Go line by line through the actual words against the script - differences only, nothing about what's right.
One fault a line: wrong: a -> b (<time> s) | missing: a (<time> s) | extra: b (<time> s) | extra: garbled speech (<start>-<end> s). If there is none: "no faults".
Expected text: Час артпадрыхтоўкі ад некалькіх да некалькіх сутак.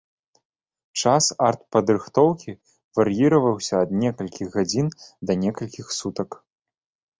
extra: вар'іраваўся (3.0 s)
extra: гадзін (4.6 s)